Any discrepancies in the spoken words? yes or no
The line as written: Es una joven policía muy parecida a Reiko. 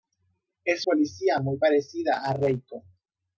yes